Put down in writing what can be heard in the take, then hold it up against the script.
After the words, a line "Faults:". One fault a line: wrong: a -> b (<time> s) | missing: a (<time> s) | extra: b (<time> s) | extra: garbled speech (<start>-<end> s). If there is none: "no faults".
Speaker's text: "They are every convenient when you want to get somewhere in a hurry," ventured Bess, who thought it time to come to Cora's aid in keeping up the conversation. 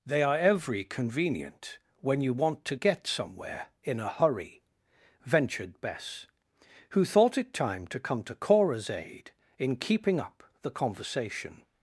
"They are every convenient when you want to get somewhere in a hurry," ventured Bess, who thought it time to come to Cora's aid in keeping up the conversation.
Faults:
no faults